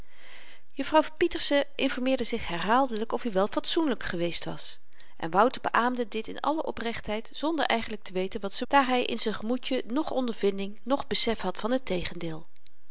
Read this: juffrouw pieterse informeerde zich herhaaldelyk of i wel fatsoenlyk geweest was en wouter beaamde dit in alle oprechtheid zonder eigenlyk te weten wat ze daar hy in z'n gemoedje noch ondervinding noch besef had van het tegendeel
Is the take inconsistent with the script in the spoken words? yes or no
no